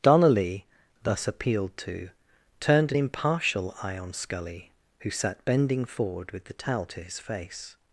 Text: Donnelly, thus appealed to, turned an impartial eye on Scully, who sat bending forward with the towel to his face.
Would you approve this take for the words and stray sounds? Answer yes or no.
yes